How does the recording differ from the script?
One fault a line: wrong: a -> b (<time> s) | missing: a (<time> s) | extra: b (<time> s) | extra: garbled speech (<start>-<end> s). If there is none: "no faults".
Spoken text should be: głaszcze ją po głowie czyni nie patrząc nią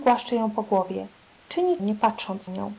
no faults